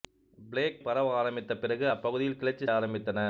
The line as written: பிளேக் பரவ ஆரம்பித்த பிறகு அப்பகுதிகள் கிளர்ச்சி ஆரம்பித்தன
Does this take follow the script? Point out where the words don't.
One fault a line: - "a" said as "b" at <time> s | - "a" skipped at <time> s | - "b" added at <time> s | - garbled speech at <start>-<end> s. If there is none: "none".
none